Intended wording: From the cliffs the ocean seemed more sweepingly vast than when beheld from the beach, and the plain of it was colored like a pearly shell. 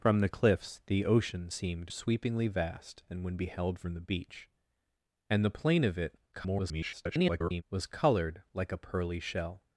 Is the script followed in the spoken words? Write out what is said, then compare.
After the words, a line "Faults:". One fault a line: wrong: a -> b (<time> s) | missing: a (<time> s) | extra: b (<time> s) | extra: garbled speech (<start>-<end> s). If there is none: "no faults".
From the cliffs the ocean seemed sweepingly vast than when beheld from the beach, and the plain of it [garbled] was colored like a pearly shell.
Faults:
missing: more (1.9 s)
extra: garbled speech (6.3-7.6 s)